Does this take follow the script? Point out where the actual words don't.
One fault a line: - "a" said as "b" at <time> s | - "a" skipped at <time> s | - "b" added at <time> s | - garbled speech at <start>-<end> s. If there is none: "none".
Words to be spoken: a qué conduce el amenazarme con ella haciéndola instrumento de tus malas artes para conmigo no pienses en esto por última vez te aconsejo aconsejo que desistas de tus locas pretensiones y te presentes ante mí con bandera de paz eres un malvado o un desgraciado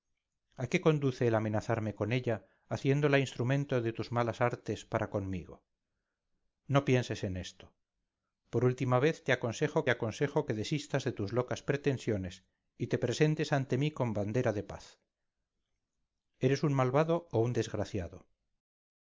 none